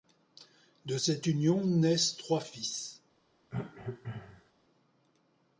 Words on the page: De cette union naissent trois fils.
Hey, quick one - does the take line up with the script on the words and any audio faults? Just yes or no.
no